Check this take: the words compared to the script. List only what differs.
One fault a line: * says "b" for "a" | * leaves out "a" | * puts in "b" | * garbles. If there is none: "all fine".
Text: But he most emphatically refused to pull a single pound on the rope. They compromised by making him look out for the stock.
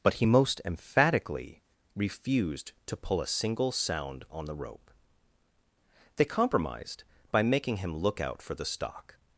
* says "sound" for "pound"